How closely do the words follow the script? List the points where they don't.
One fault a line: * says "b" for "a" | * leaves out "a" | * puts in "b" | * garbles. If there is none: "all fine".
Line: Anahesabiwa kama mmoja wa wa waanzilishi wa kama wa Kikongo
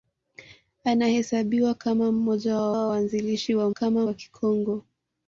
all fine